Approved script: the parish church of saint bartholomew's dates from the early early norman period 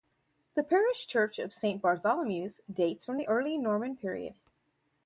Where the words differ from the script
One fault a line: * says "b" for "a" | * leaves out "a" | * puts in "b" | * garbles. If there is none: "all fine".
* leaves out "early"